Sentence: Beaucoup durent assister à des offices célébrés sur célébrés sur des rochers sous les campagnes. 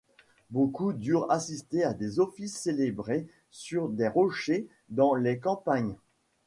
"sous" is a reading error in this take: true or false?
true